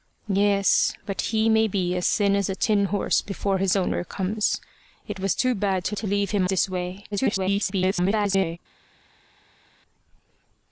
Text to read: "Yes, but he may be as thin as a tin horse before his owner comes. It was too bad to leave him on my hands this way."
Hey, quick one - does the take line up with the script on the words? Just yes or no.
no